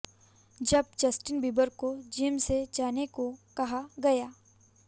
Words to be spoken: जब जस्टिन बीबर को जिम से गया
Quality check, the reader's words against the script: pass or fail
fail